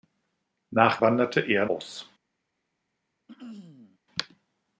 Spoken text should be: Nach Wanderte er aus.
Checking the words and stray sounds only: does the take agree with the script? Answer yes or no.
no